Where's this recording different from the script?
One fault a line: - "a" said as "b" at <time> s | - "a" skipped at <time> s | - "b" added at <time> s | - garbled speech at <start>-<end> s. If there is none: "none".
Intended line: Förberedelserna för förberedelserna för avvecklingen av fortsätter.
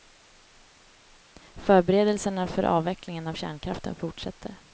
- "förberedelserna för" skipped at 2.6 s
- "kärnkraften" added at 3.3 s